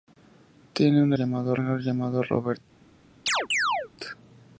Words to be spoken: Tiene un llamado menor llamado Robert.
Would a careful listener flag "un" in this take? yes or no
no